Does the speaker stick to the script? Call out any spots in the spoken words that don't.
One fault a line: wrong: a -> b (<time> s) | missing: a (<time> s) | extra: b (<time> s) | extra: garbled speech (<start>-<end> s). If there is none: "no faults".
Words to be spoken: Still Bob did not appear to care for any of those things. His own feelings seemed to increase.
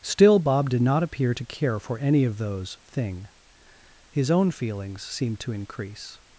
wrong: things -> thing (2.9 s)